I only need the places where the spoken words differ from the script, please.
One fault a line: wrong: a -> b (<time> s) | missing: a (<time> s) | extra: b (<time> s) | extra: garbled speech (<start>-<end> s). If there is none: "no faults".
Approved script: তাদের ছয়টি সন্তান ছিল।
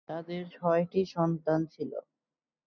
no faults